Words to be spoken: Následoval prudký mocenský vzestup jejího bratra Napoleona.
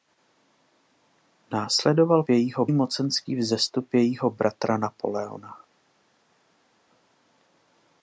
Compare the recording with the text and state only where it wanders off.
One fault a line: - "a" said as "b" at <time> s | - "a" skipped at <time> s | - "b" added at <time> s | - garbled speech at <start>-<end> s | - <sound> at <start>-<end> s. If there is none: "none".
- "prudký" said as "jejího" at 2.3 s